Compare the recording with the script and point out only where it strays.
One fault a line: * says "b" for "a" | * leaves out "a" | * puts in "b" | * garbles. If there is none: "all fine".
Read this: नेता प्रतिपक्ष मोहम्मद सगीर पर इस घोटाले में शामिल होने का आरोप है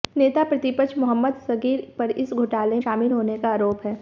* leaves out "में"